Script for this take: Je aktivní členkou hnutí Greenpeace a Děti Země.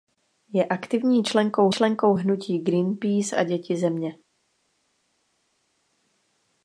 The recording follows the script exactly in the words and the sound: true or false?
false